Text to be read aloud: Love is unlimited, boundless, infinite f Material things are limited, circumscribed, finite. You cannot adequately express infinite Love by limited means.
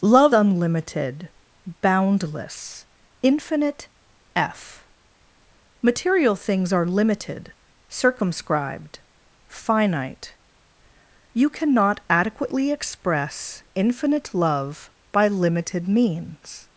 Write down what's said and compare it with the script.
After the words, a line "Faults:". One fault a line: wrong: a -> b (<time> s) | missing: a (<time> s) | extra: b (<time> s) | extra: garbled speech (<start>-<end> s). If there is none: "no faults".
Love unlimited, boundless, infinite f Material things are limited, circumscribed, finite. You cannot adequately express infinite Love by limited means.
Faults:
missing: is (0.3 s)